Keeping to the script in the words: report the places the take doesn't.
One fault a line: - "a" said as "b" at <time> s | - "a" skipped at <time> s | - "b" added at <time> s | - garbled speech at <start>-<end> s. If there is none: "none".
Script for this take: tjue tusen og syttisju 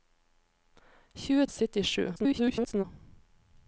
- "tusen" skipped at 1.4 s
- garbled speech at 2.2-2.8 s